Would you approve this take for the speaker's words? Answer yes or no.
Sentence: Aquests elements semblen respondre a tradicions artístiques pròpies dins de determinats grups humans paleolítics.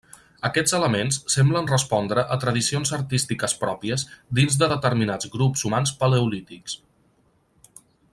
yes